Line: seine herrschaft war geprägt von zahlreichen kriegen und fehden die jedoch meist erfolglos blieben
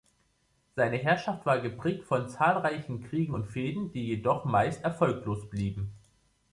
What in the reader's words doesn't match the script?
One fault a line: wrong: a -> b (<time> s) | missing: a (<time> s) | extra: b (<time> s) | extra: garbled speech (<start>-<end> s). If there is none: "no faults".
no faults